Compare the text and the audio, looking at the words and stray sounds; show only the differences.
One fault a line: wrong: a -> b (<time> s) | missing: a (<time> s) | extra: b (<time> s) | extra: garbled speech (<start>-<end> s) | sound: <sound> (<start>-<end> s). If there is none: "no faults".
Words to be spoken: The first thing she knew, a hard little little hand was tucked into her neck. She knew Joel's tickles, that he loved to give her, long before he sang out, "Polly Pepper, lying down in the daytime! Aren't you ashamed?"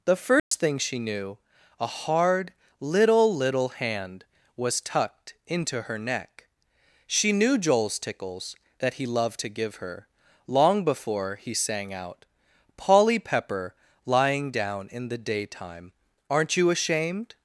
sound: dropout (0.4-0.5 s)